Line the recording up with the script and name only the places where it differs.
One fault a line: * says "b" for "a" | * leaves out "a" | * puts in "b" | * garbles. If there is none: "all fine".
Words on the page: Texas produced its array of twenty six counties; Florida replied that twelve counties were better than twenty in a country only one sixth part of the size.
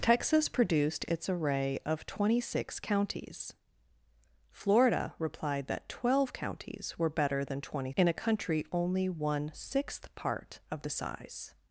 all fine